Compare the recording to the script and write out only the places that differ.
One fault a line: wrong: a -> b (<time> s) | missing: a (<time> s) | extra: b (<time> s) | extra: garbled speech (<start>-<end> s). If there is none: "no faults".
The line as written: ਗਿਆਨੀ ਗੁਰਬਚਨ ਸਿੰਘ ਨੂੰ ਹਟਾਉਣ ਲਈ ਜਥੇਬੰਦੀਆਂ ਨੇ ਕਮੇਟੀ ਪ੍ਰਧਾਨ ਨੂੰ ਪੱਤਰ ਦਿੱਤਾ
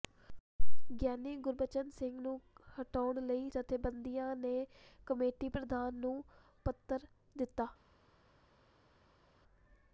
no faults